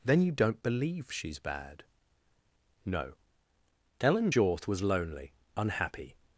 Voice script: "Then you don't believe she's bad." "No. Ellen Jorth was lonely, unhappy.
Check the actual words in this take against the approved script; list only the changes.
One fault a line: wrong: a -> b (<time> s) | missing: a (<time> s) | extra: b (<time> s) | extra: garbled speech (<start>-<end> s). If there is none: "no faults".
no faults